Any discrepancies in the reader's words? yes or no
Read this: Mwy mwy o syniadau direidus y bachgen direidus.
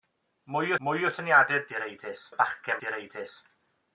no